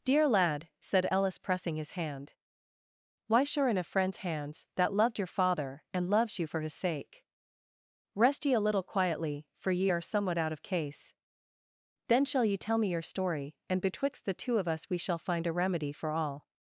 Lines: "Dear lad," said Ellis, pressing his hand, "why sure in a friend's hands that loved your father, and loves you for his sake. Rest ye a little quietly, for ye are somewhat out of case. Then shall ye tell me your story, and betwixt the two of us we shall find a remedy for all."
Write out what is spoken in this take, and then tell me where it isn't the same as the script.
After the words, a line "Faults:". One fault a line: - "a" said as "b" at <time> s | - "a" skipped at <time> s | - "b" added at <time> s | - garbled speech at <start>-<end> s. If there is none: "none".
"Dear lad," said Ellis, pressing his hand, "why sure in a friend's hands that loved your father, and loves you for his sake. Rest ye a little quietly, for ye are somewhat out of case. Then shall ye tell me your story, and betwixt the two of us we shall find a remedy for all."
Faults:
none